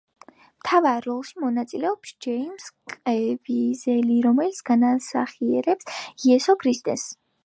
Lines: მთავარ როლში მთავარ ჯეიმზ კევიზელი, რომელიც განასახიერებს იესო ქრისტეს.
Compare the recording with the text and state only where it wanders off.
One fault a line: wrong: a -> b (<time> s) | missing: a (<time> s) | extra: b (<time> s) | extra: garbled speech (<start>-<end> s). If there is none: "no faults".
wrong: მთავარ -> მონაწილეობს (1.4 s)